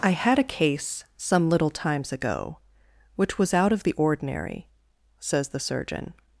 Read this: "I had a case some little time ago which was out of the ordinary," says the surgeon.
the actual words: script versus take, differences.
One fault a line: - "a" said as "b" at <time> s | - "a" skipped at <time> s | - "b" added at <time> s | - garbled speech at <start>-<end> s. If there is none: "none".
- "time" said as "times" at 1.7 s